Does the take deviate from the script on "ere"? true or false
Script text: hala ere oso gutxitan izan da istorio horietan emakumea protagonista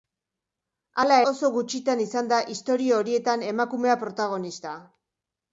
true